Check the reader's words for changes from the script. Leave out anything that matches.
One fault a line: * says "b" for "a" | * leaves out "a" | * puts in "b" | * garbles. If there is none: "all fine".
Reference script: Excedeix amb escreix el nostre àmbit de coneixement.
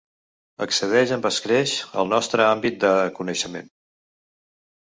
all fine